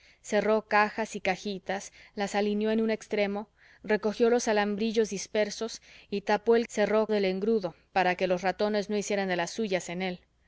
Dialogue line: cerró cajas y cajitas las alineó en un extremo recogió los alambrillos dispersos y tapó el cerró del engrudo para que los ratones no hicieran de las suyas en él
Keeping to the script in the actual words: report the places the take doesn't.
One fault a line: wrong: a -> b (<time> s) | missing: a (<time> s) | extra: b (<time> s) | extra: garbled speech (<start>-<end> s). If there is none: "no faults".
no faults